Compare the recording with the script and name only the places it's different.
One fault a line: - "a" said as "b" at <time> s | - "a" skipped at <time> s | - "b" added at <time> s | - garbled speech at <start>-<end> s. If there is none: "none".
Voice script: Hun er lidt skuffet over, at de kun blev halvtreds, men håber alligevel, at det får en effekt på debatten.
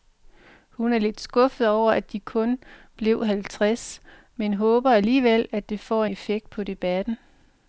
- "en" skipped at 6.0 s